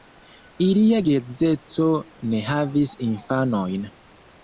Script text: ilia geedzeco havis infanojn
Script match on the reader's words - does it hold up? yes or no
no